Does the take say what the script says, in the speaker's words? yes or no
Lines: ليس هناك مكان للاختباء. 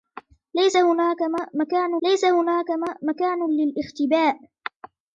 no